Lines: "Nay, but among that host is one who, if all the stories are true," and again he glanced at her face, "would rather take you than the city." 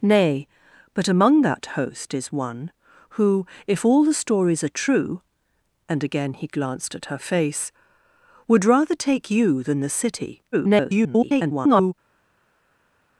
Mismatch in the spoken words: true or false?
true